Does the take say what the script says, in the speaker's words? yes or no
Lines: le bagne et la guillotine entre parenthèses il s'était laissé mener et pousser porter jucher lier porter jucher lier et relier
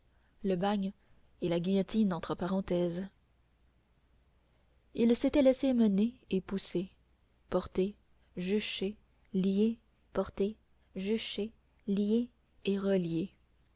yes